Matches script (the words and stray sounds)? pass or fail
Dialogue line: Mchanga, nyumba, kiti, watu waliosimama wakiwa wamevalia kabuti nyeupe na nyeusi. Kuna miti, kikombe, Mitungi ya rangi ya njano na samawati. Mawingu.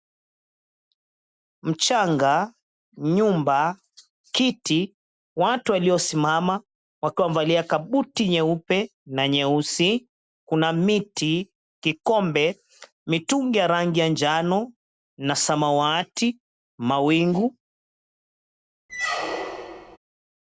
fail